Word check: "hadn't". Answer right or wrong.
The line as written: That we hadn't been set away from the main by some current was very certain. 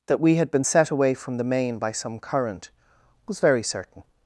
wrong